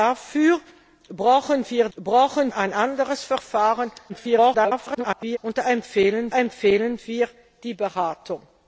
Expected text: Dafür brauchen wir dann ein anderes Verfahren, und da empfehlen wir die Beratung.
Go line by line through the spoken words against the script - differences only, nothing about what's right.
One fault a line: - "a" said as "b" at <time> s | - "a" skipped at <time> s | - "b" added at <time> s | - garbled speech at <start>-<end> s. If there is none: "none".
- "dann" said as "brauchen" at 2.0 s
- garbled speech at 4.1-5.4 s
- "empfehlen" added at 6.3 s